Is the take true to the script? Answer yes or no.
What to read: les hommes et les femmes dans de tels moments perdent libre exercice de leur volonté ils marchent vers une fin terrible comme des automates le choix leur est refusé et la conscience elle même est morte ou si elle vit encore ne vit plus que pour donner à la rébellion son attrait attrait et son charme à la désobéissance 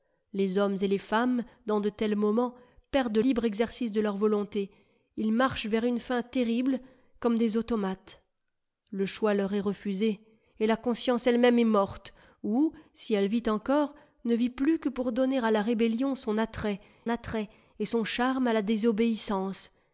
yes